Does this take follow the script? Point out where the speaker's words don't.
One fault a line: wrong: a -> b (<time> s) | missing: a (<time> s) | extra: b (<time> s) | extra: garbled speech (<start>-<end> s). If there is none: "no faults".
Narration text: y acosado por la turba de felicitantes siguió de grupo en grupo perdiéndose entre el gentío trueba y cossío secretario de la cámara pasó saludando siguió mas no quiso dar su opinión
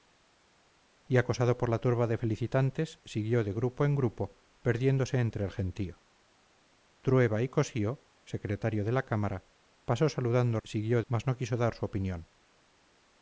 no faults